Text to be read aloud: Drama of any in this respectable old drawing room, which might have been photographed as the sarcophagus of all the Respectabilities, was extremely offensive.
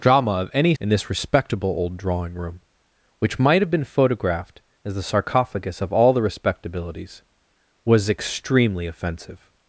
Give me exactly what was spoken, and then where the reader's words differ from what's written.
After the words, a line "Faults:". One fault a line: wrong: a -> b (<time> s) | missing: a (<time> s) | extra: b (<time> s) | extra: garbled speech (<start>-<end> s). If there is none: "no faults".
Drama of any in this respectable old drawing room, which might have been photographed as the sarcophagus of all the Respectabilities, was extremely offensive.
Faults:
no faults